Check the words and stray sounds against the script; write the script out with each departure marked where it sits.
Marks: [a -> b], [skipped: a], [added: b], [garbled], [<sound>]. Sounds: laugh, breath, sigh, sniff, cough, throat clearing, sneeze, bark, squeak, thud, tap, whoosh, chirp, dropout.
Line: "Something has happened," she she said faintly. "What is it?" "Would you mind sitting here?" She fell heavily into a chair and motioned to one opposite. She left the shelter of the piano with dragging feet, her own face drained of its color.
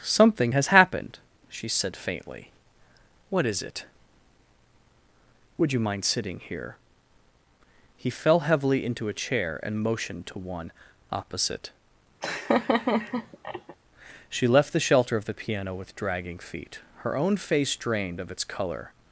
"Something has happened," she [skipped: she] said faintly. "What is it?" "Would you mind sitting here?" [She -> He] fell heavily into a chair and motioned to one opposite. [laugh] She left the shelter of the piano with dragging feet, her own face drained of its color.